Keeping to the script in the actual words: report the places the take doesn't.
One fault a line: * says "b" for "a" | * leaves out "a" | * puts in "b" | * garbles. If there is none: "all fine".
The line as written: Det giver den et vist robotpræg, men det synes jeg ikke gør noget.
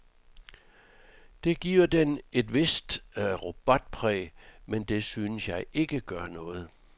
all fine